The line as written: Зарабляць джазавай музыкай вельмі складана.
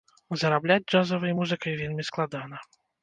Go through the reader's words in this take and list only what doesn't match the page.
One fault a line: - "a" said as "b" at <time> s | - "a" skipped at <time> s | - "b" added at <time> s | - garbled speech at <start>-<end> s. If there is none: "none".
none